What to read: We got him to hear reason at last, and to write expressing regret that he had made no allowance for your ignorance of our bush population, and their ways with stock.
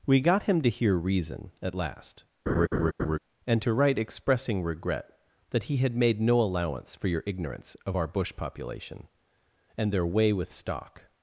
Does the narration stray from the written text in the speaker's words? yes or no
yes